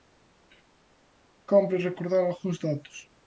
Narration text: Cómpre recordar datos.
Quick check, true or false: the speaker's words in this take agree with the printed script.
false